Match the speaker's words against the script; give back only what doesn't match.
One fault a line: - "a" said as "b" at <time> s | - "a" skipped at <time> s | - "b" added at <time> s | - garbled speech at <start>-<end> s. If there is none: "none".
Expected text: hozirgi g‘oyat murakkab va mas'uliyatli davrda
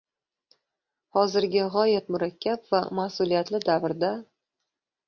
none